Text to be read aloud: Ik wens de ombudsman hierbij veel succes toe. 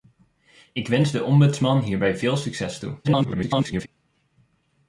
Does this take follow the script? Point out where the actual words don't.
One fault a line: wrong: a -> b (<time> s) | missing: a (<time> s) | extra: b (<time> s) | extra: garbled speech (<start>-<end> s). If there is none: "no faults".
extra: garbled speech (3.0-3.9 s)